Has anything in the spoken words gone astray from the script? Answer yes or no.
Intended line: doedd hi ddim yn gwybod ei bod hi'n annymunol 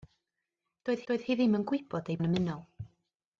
yes